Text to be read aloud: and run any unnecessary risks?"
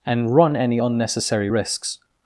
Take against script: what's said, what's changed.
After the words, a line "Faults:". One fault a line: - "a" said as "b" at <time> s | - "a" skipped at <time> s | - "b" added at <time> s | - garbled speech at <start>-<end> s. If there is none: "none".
and run any unnecessary risks?"
Faults:
none